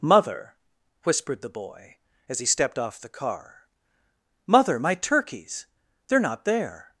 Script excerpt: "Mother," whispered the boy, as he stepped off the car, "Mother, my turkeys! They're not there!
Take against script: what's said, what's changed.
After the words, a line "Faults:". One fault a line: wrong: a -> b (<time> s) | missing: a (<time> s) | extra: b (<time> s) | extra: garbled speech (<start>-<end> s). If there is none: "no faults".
"Mother," whispered the boy, as he stepped off the car, "Mother, my turkeys! They're not there!
Faults:
no faults